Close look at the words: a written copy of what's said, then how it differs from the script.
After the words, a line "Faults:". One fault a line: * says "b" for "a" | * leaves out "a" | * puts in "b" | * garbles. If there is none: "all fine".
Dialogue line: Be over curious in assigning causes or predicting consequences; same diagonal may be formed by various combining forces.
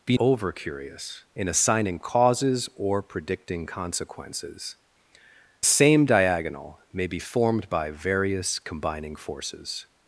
Be over curious in assigning causes or predicting consequences; same diagonal may be formed by various combining forces.
Faults:
all fine